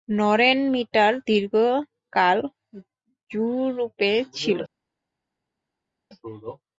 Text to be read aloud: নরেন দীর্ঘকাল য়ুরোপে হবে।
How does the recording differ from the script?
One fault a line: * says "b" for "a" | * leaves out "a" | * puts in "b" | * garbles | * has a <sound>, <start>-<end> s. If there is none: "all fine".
* puts in "মিটার"
* says "ছিল" for "হবে"